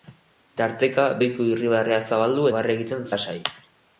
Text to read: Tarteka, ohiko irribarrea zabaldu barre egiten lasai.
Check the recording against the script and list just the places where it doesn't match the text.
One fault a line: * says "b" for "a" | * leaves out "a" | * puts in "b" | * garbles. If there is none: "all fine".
all fine